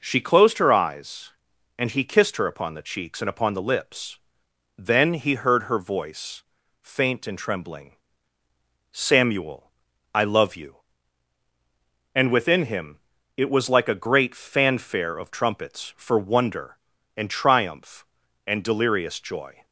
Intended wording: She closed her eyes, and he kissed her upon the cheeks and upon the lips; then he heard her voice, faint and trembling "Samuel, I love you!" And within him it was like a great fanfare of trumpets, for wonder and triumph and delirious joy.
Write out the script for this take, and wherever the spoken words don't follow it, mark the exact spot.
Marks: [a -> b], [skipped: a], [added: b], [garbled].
She closed her eyes, and he kissed her upon the cheeks and upon the lips; then he heard her voice, faint and trembling "Samuel, I love you!" And within him it was like a great fanfare of trumpets, for wonder and triumph and delirious joy.